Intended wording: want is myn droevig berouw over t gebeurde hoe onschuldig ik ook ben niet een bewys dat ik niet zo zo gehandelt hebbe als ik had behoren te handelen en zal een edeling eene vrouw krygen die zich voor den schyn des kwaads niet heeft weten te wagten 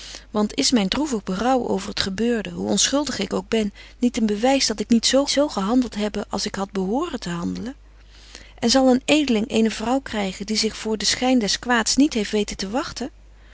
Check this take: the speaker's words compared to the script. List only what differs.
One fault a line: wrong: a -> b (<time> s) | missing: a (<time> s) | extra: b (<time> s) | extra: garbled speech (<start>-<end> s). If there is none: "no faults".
no faults